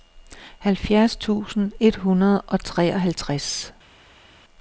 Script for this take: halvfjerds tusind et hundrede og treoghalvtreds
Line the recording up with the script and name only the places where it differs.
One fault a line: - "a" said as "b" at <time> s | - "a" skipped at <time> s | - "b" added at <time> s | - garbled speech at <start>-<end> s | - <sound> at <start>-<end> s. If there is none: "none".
none